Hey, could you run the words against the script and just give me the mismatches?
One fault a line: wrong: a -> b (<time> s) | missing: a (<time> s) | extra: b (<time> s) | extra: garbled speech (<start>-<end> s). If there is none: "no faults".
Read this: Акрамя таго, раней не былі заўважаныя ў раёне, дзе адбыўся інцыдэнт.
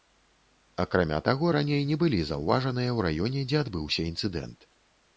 no faults